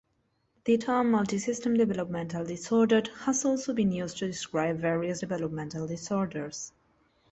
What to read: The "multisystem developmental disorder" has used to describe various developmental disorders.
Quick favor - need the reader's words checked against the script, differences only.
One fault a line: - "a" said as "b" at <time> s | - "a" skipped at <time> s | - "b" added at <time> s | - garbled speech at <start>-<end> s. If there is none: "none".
- "term" added at 0.8 s
- "also been" added at 3.4 s